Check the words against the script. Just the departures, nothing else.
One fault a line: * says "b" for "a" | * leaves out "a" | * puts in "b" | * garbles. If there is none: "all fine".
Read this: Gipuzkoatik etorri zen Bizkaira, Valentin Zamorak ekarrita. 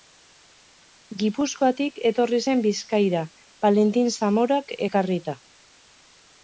all fine